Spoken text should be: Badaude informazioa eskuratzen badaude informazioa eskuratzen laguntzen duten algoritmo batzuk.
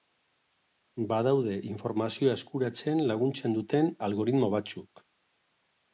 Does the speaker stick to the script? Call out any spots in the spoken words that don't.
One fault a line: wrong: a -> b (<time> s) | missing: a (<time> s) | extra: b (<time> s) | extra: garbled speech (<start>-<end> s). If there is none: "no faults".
missing: badaude informazioa eskuratzen (3.0 s)